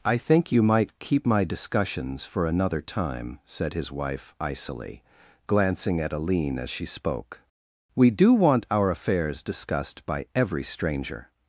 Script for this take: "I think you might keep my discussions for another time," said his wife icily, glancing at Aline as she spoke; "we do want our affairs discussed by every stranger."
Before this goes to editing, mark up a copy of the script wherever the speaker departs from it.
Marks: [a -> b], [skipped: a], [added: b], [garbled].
"I think you might keep my discussions for another time," said his wife icily, glancing at Aline as she spoke; "we do want our affairs discussed by every stranger."